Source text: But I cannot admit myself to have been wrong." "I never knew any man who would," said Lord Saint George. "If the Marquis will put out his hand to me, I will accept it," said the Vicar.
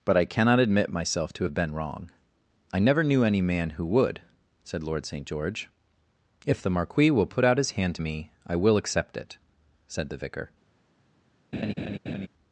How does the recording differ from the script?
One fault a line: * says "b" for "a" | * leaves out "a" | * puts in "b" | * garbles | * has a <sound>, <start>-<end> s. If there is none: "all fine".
* has a laugh, 11.5-12.3 s